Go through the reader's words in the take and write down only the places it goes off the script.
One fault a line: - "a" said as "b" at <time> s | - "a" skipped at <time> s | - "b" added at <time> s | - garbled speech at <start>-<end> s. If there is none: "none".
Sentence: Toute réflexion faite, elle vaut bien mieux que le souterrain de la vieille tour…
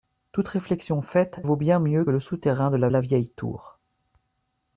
- "elle" skipped at 1.4 s
- "que" skipped at 2.0 s
- "la" added at 2.9 s